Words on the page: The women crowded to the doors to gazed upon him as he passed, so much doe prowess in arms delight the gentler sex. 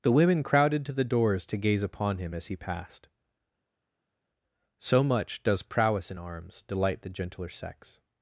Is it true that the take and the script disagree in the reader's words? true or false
true